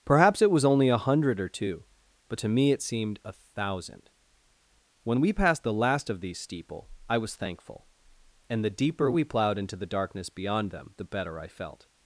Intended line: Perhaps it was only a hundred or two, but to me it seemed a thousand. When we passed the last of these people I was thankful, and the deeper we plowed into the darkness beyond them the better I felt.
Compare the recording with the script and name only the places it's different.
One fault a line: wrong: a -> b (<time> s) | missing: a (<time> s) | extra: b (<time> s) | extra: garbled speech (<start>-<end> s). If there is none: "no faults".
wrong: people -> steeple (6.4 s)